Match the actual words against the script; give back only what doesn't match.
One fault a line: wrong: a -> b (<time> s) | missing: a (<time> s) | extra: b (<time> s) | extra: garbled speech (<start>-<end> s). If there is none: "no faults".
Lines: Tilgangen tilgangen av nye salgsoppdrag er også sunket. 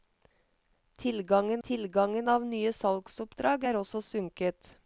no faults